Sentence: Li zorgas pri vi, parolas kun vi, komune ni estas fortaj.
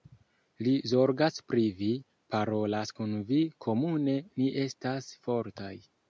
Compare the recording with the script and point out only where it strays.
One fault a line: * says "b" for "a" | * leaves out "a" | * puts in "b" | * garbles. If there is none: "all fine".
all fine